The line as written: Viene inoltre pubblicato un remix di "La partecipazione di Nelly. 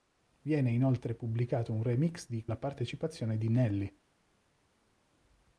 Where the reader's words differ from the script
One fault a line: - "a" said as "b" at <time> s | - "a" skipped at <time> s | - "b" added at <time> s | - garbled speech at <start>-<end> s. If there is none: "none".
none